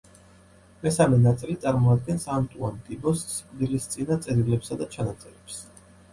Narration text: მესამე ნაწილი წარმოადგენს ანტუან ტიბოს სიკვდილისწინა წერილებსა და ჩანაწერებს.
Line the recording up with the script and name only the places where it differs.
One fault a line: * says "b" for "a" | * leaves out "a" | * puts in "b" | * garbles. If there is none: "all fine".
all fine